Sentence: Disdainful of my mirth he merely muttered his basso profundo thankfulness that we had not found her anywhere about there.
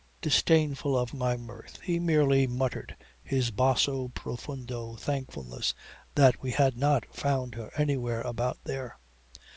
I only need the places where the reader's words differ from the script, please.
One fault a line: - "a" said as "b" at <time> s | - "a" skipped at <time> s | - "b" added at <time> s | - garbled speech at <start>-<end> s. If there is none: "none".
none